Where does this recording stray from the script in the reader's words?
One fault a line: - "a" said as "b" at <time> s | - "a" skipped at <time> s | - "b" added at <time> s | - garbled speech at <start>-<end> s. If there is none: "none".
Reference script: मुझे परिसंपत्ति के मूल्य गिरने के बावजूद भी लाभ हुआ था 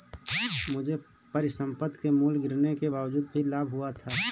none